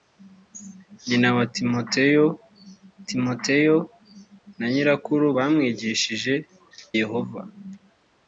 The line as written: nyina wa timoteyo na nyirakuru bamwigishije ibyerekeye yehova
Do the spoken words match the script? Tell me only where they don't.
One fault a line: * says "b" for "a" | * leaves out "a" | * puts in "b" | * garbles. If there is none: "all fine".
* puts in "timoteyo"
* leaves out "ibyerekeye"